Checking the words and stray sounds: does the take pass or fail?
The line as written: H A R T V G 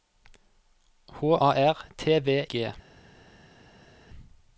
pass